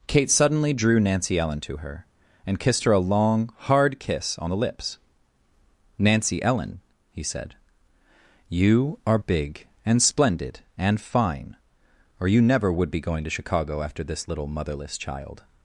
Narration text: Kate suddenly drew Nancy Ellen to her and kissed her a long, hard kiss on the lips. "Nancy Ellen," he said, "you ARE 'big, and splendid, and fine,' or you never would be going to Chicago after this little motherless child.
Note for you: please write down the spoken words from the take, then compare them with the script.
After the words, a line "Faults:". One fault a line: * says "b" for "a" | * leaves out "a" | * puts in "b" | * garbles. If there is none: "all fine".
Kate suddenly drew Nancy Ellen to her and kissed her a long, hard kiss on the lips. "Nancy Ellen," he said, "you ARE 'big, and splendid, and fine,' or you never would be going to Chicago after this little motherless child.
Faults:
all fine